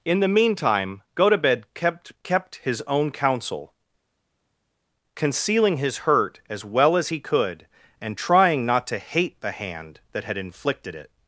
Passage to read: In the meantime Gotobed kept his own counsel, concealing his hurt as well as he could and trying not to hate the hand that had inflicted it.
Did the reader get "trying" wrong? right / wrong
right